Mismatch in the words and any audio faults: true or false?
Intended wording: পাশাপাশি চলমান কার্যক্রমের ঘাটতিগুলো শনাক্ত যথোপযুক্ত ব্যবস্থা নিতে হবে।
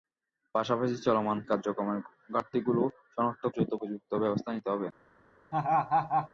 true